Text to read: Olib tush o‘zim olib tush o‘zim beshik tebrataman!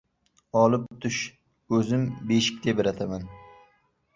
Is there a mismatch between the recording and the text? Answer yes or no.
yes